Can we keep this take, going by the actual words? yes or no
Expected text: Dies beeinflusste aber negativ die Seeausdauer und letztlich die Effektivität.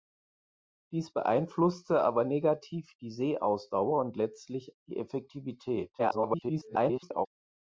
no